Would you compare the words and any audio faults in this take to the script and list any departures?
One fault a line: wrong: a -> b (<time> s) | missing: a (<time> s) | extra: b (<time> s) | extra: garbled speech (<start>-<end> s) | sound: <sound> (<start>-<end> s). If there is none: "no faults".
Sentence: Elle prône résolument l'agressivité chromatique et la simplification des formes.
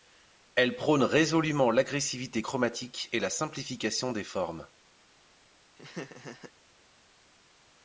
sound: laugh (5.8-6.5 s)